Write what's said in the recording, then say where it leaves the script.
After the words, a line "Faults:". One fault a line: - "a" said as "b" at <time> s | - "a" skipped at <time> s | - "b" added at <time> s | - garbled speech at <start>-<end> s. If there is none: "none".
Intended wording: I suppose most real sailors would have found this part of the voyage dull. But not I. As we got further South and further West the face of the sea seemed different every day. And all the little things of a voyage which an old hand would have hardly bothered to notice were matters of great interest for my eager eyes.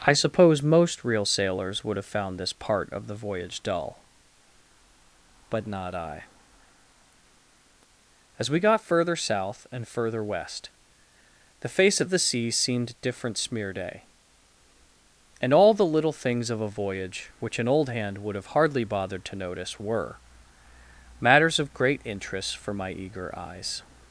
I suppose most real sailors would have found this part of the voyage dull. But not I. As we got further South and further West the face of the sea seemed different smear day. And all the little things of a voyage which an old hand would have hardly bothered to notice were matters of great interest for my eager eyes.
Faults:
- "every" said as "smear" at 13.4 s